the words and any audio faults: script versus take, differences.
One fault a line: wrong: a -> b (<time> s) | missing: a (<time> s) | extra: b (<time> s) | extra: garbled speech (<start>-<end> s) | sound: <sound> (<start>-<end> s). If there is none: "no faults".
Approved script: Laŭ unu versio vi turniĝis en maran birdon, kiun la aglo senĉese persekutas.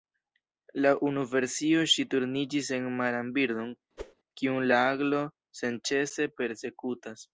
wrong: vi -> ŝi (1.9 s)
sound: whoosh (4.0-4.1 s)